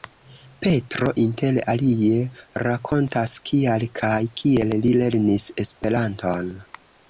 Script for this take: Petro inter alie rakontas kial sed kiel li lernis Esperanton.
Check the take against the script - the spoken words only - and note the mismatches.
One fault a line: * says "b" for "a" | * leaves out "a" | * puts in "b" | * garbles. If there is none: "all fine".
* says "kaj" for "sed"